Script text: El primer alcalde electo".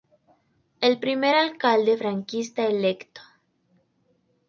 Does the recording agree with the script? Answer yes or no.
no